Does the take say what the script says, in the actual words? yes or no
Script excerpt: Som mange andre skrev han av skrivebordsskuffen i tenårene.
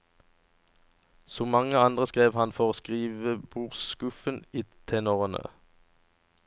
no